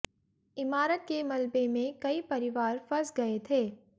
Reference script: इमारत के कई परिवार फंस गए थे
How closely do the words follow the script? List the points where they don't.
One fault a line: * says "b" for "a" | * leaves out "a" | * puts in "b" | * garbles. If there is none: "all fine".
* puts in "मलबे में"